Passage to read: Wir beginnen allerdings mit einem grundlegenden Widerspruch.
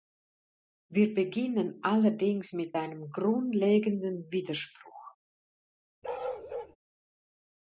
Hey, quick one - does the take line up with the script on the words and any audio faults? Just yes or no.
no